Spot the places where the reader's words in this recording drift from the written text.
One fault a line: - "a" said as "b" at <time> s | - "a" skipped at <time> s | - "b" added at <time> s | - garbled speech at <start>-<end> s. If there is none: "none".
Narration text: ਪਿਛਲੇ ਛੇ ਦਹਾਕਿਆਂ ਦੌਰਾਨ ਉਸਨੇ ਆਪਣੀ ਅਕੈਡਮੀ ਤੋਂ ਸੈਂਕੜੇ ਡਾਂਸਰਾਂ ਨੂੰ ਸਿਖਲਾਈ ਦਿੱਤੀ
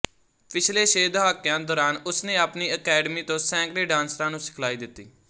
none